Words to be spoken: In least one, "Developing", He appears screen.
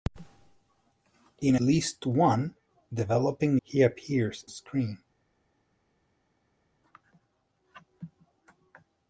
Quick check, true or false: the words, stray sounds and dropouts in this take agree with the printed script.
true